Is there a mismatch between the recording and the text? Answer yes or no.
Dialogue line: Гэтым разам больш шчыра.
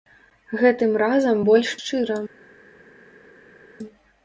no